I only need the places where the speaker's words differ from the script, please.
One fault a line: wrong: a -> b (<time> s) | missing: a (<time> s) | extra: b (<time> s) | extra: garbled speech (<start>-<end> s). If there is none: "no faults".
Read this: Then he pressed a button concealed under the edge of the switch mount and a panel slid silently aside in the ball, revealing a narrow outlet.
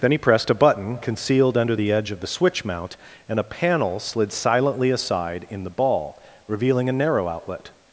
no faults